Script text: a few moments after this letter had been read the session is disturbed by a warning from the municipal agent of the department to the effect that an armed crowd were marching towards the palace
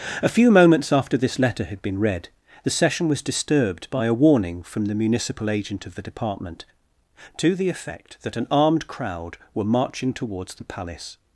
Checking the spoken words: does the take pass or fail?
fail